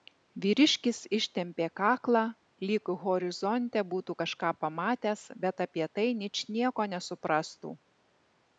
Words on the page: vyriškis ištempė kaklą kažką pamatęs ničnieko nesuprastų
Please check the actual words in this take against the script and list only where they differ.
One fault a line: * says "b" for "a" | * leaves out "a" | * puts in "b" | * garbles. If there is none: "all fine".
* puts in "lyg horizonte būtų"
* puts in "bet apie tai"